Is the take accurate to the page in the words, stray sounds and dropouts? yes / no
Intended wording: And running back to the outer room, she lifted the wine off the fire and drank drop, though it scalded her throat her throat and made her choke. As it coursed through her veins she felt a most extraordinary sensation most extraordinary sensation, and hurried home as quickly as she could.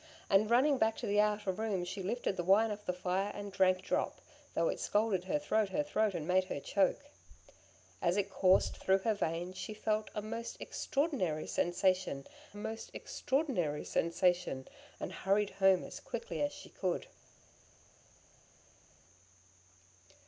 yes